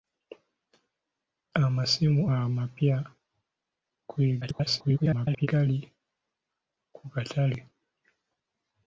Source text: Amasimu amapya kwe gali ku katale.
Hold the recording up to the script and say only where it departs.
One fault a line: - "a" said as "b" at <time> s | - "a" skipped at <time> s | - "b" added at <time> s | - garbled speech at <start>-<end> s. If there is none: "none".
- garbled speech at 4.4-5.5 s